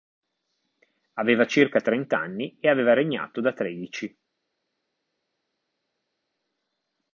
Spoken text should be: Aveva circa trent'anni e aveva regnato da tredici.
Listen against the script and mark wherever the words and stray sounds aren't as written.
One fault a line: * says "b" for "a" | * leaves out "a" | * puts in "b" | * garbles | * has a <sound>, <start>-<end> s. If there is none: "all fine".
all fine